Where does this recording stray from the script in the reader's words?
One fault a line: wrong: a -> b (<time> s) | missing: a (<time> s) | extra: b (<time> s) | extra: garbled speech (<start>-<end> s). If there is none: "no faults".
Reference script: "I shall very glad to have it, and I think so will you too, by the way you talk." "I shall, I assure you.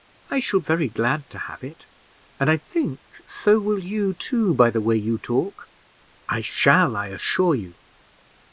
no faults